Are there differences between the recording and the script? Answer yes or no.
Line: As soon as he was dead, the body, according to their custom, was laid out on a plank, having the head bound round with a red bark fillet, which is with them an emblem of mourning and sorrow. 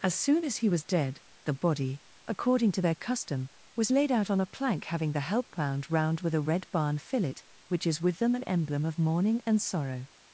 yes